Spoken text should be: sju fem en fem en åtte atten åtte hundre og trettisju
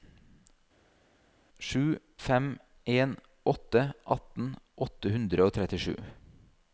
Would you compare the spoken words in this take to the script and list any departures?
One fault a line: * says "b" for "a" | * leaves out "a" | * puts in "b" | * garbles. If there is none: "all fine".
* leaves out "fem en"